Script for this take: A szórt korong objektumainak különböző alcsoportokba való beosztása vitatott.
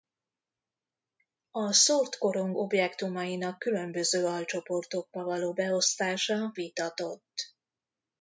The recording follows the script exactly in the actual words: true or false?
true